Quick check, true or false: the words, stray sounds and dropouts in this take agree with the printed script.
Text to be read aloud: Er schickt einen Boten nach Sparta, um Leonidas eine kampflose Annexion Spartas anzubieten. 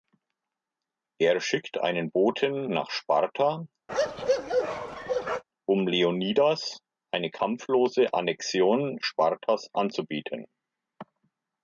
false